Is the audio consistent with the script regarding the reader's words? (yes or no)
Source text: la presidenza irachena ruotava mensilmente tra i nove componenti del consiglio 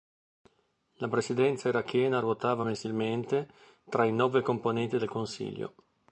yes